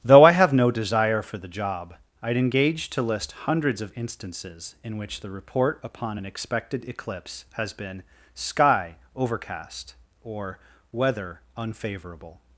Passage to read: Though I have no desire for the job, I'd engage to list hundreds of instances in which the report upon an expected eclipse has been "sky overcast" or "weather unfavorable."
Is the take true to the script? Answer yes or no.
yes